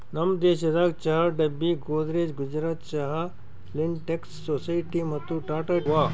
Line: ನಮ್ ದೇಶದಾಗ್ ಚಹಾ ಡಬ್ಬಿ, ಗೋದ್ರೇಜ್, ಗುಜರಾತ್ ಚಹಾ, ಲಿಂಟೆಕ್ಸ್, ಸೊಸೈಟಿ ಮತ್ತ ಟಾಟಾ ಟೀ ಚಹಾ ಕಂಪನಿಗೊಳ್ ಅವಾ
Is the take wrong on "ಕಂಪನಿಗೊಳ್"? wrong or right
wrong